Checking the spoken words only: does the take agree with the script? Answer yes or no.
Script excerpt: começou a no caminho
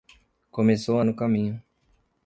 yes